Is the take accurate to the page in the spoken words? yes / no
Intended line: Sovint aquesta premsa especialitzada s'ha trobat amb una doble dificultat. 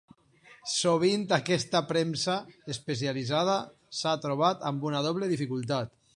yes